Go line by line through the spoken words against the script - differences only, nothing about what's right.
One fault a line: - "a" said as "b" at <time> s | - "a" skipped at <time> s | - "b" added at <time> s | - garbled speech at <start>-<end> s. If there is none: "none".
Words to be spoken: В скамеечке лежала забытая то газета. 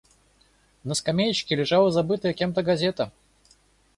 - "В" said as "На" at 0.8 s
- "кем" added at 2.3 s